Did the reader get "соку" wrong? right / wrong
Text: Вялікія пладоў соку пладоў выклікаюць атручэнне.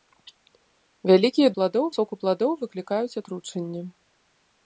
right